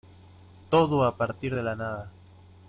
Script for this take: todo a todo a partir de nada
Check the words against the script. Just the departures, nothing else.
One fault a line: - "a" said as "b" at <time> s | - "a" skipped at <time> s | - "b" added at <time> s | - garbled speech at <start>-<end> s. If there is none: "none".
- "todo a" skipped at 1.1 s
- "la" added at 1.6 s